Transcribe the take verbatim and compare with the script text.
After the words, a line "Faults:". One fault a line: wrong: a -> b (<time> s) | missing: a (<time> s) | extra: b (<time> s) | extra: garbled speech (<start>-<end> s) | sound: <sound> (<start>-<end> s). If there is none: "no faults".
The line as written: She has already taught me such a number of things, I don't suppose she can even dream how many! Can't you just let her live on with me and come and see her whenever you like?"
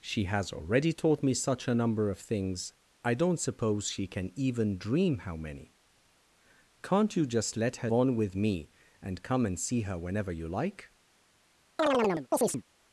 She has already taught me such a number of things, I don't suppose she can even dream how many! Can't you just let her on with me and come and see her whenever you like?"
Faults:
missing: live (7.9 s)
sound: chirp (11.8-12.6 s)